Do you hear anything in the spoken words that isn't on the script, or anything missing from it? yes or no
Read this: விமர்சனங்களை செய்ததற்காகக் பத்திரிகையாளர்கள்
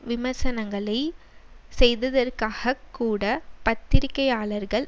yes